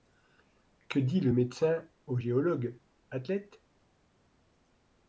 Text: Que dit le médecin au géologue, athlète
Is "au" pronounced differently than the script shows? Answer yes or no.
no